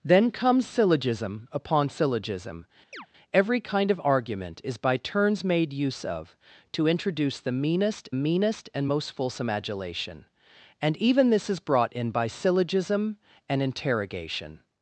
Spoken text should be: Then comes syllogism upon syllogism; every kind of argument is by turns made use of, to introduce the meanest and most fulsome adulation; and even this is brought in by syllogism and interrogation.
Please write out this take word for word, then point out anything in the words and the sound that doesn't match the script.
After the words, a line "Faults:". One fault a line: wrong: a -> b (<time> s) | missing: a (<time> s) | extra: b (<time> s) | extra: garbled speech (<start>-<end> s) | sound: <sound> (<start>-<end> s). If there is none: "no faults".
Then comes syllogism upon syllogism; every kind of argument is by turns made use of, to introduce the meanest meanest and most fulsome adulation; and even this is brought in by syllogism and interrogation.
Faults:
sound: chirp (2.9-3.1 s)
extra: meanest (8.1 s)